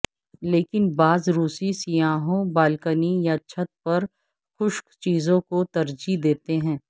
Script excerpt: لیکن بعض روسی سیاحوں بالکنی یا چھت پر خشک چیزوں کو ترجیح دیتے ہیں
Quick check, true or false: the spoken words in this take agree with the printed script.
true